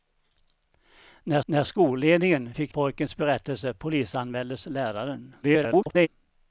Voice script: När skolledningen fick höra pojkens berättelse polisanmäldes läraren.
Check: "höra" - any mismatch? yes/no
yes